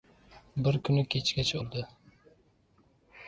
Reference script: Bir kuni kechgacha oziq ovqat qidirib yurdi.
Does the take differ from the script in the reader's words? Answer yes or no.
yes